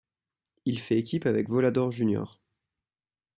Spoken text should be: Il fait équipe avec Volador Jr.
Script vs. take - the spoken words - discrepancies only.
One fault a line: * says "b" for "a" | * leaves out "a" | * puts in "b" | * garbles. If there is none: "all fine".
all fine